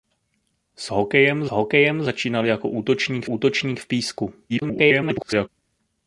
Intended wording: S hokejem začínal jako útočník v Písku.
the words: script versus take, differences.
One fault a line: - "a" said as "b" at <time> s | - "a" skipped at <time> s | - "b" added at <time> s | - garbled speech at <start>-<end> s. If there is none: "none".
- "hokejem" added at 1.5 s
- "útočník" added at 3.2 s
- garbled speech at 4.5-5.5 s